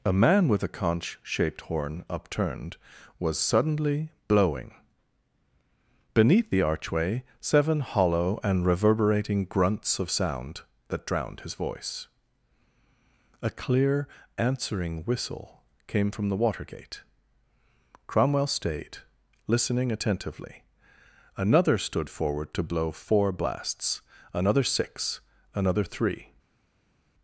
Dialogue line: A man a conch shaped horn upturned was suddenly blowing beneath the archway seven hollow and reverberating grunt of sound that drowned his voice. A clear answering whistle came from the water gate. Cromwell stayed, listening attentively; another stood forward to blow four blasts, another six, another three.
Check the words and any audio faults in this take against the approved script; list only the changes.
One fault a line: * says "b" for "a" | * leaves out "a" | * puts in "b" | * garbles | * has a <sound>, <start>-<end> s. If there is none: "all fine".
* puts in "with"
* says "grunts" for "grunt"